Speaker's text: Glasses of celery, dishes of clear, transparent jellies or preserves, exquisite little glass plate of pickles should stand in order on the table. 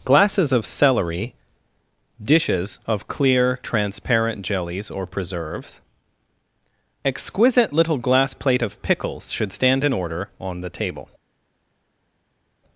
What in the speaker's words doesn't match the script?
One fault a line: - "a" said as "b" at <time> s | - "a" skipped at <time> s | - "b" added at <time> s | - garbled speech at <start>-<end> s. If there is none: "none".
none